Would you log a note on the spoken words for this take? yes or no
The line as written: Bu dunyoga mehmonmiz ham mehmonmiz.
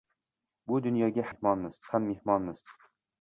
no